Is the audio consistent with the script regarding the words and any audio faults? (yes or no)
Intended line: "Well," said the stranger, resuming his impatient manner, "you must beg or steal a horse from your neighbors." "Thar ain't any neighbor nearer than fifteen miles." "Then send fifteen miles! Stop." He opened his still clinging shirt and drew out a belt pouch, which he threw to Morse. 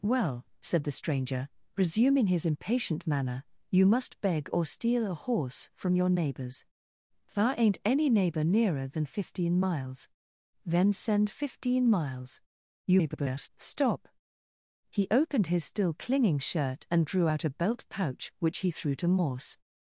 no